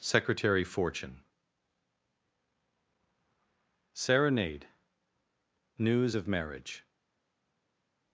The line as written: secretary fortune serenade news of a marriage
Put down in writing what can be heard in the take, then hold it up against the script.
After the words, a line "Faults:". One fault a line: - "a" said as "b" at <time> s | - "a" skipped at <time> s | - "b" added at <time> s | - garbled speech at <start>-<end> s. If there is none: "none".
secretary fortune serenade news of marriage
Faults:
- "a" skipped at 6.3 s